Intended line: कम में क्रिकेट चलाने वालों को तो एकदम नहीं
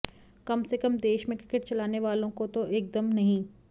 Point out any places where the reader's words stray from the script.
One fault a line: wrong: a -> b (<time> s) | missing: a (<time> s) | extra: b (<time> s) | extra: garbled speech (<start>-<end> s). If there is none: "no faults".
extra: से कम देश (0.6 s)